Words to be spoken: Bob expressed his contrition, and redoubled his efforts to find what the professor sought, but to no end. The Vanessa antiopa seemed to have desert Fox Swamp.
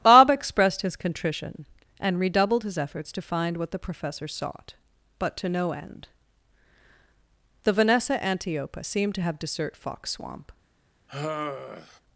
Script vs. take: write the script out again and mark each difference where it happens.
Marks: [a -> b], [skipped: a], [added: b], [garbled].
Bob expressed his contrition, and redoubled his efforts to find what the professor sought, but to no end. The Vanessa antiopa seemed to have desert Fox Swamp.